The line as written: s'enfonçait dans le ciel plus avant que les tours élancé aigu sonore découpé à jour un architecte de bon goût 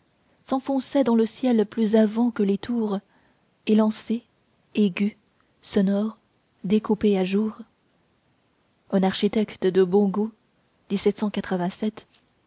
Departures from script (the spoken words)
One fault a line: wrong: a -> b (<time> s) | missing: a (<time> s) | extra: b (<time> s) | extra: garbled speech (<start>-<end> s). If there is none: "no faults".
no faults